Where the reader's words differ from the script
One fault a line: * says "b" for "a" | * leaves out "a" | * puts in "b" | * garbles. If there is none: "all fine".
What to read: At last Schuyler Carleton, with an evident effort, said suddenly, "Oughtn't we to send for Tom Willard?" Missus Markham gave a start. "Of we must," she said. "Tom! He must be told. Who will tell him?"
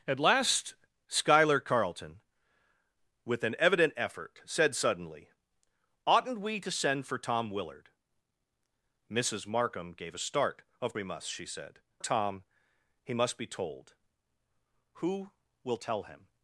all fine